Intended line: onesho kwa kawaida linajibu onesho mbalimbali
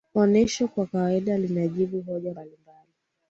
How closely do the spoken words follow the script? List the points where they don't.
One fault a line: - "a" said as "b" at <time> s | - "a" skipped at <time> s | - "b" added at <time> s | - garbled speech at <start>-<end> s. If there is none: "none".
- "onesho" said as "hoja" at 2.0 s